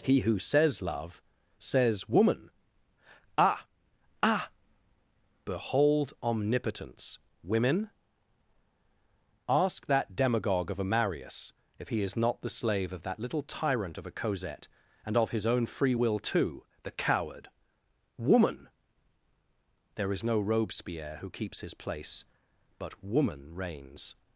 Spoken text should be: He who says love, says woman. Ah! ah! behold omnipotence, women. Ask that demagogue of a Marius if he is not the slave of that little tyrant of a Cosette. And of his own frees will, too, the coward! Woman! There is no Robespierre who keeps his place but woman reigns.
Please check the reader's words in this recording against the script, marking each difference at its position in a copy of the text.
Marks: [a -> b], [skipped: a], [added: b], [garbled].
He who says love, says woman. Ah! ah! behold omnipotence, women. Ask that demagogue of a Marius if he is not the slave of that little tyrant of a Cosette. And of his own [frees -> free] will, too, the coward! Woman! There is no Robespierre who keeps his place but woman reigns.